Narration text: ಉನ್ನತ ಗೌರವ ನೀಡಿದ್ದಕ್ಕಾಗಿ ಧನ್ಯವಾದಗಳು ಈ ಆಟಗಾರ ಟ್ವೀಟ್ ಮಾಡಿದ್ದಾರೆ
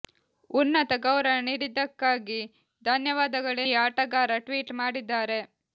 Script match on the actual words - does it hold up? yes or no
yes